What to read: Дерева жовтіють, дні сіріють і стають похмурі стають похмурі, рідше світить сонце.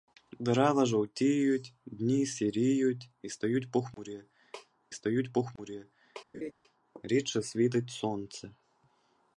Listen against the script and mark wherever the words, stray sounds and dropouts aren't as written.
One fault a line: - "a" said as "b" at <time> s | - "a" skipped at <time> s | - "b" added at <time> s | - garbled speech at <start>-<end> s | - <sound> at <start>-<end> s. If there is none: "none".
- laugh at 6.3-6.5 s